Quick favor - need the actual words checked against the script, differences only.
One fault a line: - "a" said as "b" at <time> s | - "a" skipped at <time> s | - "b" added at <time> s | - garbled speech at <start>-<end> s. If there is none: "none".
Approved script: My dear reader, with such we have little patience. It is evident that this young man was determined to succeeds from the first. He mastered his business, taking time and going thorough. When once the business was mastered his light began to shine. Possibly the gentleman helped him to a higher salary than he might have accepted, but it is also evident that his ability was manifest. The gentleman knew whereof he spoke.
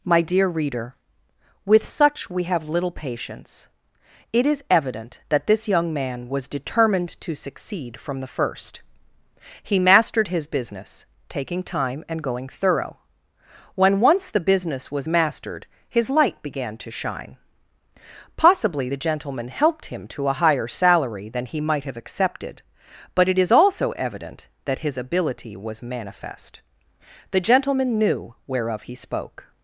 - "succeeds" said as "succeed" at 7.3 s